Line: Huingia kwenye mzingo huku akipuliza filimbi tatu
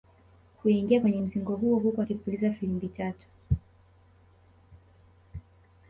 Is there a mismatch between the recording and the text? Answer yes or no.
yes